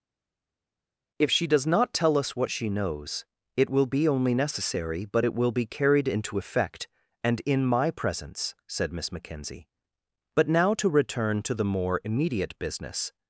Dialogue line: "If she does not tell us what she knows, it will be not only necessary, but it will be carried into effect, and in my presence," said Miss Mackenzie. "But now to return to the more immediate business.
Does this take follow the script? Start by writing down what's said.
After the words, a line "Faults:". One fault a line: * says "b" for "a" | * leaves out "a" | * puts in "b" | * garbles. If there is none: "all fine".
"If she does not tell us what she knows, it will be only necessary, but it will be carried into effect, and in my presence," said Miss Mackenzie. "But now to return to the more immediate business.
Faults:
* leaves out "not"